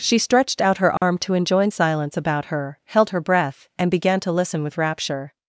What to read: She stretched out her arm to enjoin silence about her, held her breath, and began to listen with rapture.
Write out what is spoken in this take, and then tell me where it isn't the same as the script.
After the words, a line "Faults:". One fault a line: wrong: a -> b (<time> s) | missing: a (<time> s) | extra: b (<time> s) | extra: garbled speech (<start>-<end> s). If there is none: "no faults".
She stretched out her arm to enjoin silence about her, held her breath, and began to listen with rapture.
Faults:
no faults